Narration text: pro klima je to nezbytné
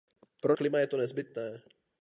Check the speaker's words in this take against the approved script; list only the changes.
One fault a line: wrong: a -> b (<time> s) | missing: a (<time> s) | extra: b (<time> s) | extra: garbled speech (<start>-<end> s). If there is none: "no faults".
no faults